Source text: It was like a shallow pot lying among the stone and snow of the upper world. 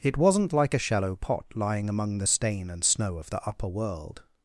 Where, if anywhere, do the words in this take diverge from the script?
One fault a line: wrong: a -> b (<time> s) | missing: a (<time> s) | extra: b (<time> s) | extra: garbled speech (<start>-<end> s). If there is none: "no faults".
wrong: was -> wasn't (0.2 s)
wrong: stone -> stain (2.3 s)